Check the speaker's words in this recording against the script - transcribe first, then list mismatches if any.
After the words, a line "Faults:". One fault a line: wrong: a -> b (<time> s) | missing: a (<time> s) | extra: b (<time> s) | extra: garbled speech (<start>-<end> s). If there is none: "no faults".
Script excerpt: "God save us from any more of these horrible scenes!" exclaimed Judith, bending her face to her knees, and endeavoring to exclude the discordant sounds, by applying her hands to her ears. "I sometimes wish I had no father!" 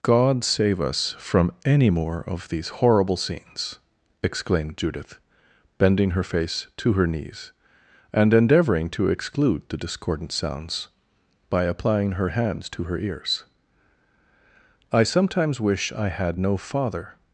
"God save us from any more of these horrible scenes!" exclaimed Judith, bending her face to her knees, and endeavoring to exclude the discordant sounds, by applying her hands to her ears. "I sometimes wish I had no father!"
Faults:
no faults